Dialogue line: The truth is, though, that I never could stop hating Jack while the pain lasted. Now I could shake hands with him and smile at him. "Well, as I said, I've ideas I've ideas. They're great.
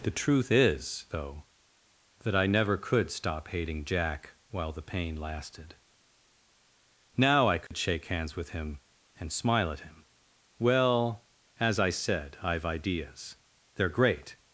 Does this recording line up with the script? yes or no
no